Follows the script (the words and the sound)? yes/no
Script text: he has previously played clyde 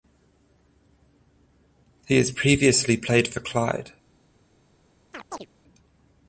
no